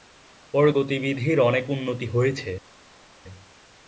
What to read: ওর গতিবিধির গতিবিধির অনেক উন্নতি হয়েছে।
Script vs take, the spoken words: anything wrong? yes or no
yes